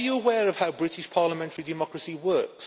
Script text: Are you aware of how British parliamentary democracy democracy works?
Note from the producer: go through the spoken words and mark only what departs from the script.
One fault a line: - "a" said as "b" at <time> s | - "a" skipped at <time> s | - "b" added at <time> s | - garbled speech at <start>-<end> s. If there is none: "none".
- "democracy" skipped at 2.2 s